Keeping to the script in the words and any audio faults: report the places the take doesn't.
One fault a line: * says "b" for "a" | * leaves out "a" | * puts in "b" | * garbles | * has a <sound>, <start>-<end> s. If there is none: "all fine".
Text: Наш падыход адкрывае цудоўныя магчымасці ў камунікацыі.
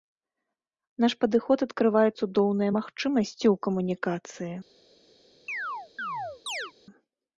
* has a chirp, 5.5-6.7 s